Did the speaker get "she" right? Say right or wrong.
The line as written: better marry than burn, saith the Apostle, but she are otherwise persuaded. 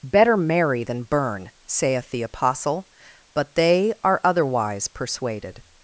wrong